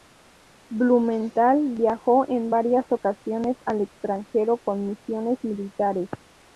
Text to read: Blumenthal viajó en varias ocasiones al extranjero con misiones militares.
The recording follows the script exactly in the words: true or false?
true